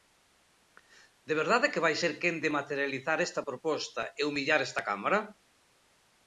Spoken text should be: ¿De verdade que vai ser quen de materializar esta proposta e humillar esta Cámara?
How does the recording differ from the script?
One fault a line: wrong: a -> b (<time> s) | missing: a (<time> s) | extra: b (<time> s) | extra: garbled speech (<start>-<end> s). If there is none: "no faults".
no faults